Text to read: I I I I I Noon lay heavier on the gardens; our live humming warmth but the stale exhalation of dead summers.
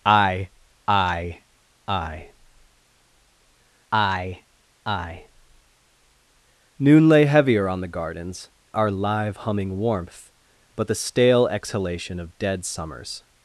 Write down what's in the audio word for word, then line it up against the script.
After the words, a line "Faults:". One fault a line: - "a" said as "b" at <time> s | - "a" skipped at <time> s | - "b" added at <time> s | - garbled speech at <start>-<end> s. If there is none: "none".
I I I I I Noon lay heavier on the gardens; our live humming warmth but the stale exhalation of dead summers.
Faults:
none